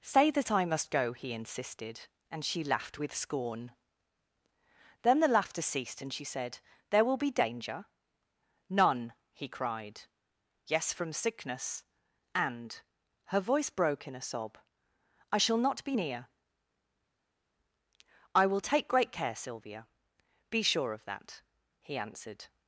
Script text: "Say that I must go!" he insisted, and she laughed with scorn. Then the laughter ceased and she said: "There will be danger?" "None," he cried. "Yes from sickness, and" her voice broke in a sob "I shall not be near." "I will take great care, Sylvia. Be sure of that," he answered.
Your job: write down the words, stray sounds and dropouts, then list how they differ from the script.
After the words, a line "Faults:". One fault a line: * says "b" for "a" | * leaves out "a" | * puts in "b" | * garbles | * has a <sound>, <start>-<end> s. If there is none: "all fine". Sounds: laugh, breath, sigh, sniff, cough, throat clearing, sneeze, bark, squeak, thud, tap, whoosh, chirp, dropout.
"Say that I must go!" he insisted, and she laughed with scorn. Then the laughter ceased and she said: "There will be danger?" "None," he cried. "Yes from sickness, and" her voice broke in a sob "I shall not be near." "I will take great care, Sylvia. Be sure of that," he answered.
Faults:
all fine